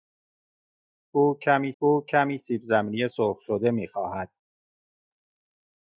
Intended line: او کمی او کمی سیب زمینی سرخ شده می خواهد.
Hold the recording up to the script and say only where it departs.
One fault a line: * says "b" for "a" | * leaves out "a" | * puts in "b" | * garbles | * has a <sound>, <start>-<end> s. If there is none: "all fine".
all fine